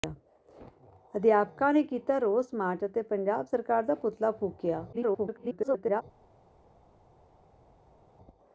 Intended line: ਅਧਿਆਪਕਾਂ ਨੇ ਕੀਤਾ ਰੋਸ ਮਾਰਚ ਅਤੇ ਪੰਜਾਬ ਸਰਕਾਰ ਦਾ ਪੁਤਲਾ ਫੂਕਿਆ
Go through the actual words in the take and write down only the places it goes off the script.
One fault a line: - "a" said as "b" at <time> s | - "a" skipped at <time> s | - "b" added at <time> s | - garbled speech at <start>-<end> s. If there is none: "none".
- garbled speech at 4.9-6.0 s